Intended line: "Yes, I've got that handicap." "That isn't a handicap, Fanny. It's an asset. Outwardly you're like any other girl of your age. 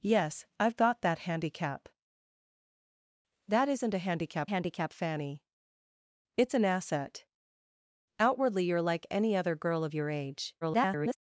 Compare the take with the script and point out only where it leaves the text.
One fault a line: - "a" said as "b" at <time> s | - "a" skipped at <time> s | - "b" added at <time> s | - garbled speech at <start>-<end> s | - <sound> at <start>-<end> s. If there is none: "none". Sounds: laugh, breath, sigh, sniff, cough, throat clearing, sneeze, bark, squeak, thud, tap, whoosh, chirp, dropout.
- "handicap" added at 4.5 s
- garbled speech at 10.6-11.2 s